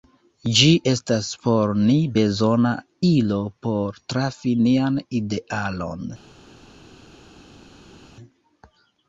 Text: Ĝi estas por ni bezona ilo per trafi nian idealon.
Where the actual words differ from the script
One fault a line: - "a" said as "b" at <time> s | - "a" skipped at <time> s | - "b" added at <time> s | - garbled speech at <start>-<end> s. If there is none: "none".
- "per" said as "por" at 3.7 s